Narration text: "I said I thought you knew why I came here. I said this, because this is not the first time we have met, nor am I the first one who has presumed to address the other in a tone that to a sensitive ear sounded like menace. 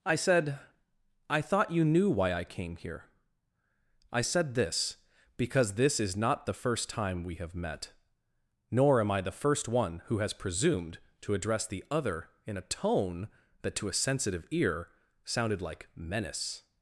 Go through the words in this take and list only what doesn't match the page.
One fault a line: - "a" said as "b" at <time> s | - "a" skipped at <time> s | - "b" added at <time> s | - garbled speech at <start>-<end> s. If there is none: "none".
none